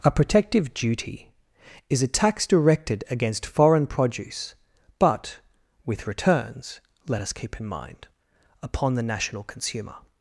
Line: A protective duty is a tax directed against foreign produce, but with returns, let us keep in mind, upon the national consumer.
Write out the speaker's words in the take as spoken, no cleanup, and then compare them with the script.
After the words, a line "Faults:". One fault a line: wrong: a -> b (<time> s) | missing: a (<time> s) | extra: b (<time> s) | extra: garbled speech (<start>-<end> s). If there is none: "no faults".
A protective duty is a tax directed against foreign produce, but with returns, let us keep in mind, upon the national consumer.
Faults:
no faults